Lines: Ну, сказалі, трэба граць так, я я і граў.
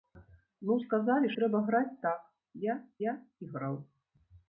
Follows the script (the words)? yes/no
yes